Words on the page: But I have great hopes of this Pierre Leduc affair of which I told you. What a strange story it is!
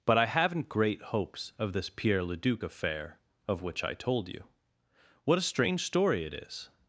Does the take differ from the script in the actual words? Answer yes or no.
yes